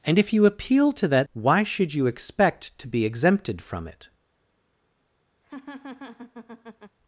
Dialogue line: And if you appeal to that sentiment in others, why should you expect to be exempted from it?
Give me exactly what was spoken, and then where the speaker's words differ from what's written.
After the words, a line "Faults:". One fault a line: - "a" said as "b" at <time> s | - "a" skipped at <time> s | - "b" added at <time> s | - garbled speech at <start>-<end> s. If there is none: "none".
And if you appeal to that why should you expect to be exempted from it?
Faults:
- "sentiment in others" skipped at 1.3 s